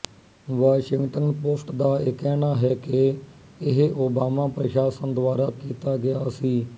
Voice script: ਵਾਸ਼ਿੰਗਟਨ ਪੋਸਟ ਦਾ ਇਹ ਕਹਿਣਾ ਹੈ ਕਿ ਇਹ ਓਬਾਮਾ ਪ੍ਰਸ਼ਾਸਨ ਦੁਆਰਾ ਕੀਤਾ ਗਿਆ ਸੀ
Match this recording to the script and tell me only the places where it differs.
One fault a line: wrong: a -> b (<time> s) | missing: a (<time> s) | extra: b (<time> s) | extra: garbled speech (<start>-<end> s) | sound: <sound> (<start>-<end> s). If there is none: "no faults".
no faults